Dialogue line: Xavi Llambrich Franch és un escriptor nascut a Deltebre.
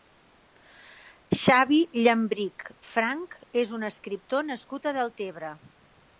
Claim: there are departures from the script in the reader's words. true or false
false